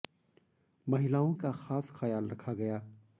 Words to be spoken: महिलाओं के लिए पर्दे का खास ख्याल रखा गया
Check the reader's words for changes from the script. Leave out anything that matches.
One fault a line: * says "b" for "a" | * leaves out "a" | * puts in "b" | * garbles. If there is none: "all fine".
* leaves out "के लिए पर्दे"